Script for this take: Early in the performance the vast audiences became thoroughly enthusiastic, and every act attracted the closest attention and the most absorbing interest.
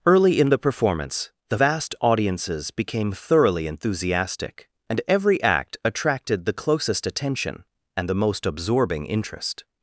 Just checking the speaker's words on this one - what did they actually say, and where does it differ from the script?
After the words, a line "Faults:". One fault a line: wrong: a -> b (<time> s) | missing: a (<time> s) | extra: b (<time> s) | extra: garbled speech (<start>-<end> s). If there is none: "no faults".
Early in the performance the vast audiences became thoroughly enthusiastic, and every act attracted the closest attention and the most absorbing interest.
Faults:
no faults